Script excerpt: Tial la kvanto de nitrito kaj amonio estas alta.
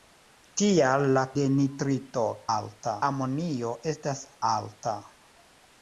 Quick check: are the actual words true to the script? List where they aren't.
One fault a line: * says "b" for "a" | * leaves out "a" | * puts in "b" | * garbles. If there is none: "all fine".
* leaves out "kvanto"
* says "alta" for "kaj"